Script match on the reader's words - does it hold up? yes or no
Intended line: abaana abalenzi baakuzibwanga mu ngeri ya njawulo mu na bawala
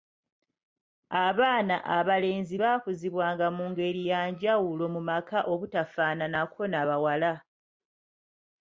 no